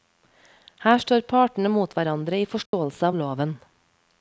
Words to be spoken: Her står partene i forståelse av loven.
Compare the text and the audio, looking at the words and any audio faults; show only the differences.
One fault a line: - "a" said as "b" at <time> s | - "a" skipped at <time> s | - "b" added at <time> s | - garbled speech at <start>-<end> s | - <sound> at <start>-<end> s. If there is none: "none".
- "mot hverandre" added at 1.8 s
- dropout at 2.7-2.7 s